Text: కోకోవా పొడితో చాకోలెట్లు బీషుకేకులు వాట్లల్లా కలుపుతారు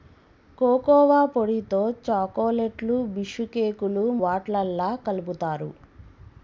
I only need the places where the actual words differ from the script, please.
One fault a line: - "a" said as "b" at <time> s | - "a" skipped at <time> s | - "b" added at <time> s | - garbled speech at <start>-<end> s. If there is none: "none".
none